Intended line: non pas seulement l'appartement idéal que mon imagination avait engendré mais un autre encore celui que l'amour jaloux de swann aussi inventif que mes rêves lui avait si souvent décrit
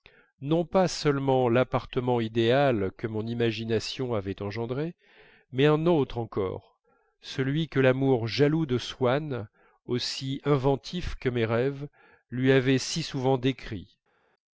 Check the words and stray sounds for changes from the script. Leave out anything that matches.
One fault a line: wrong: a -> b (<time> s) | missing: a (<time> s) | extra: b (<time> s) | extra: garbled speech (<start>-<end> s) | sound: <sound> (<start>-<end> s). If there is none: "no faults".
no faults